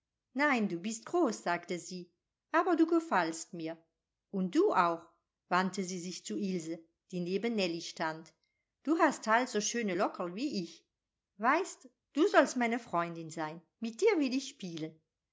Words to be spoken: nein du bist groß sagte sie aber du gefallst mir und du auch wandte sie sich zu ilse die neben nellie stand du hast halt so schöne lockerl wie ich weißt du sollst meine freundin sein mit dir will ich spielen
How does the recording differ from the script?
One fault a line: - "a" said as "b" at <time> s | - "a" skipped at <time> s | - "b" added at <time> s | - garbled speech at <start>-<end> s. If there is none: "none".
none